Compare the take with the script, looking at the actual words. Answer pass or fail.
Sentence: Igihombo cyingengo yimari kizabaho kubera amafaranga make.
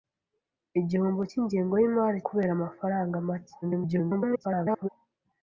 fail